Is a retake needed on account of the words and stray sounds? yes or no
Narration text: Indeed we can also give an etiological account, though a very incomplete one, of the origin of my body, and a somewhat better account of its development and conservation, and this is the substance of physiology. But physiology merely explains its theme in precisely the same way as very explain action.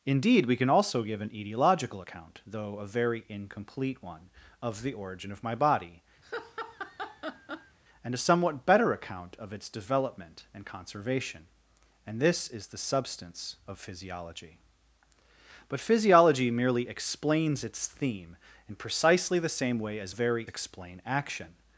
yes